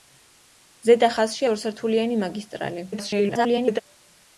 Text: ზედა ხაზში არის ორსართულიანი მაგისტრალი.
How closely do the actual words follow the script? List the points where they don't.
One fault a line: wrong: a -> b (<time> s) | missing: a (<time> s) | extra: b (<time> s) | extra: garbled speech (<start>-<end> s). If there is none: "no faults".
missing: არის (1.5 s)
extra: garbled speech (2.9-3.8 s)